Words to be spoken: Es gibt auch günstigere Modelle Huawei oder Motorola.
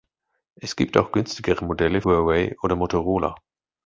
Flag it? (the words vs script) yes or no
no